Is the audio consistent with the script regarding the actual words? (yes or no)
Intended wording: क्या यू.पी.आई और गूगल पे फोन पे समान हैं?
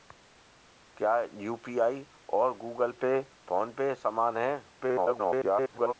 no